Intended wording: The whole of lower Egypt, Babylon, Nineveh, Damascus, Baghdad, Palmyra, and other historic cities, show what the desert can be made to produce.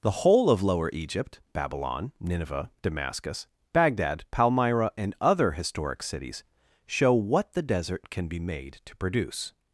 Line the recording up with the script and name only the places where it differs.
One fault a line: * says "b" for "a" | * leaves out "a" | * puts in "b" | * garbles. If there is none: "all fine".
all fine